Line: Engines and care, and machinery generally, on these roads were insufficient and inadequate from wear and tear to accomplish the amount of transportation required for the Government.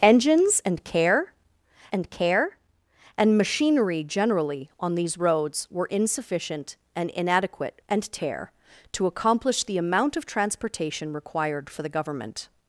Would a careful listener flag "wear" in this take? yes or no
yes